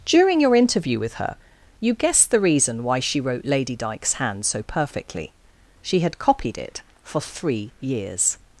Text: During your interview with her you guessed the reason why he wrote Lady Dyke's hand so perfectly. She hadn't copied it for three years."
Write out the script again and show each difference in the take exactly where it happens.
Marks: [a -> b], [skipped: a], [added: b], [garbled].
During your interview with her you guessed the reason why [he -> she] wrote Lady Dyke's hand so perfectly. She [hadn't -> had] copied it for three years."